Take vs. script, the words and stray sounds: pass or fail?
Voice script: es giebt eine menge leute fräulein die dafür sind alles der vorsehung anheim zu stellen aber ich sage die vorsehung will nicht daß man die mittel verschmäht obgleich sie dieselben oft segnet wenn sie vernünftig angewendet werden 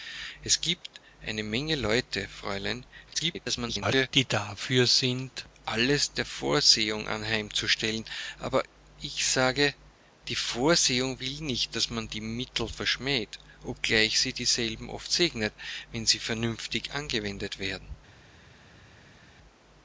fail